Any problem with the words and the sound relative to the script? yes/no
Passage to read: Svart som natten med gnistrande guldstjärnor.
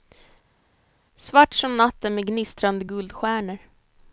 no